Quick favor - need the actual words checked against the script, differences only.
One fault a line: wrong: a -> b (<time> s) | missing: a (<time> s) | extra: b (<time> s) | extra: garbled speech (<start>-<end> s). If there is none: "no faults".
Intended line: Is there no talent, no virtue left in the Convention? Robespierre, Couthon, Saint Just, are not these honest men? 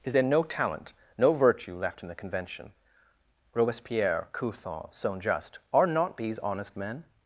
no faults